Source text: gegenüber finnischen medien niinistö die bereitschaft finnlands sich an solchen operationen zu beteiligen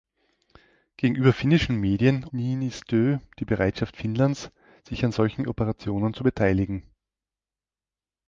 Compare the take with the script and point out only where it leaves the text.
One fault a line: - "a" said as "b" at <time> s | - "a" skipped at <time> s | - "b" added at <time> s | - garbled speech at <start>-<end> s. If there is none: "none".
none